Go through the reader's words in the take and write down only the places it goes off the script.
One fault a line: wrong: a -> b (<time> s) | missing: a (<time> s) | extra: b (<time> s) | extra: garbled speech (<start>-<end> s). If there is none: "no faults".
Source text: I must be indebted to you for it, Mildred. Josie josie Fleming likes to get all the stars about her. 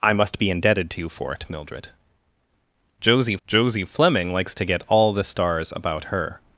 no faults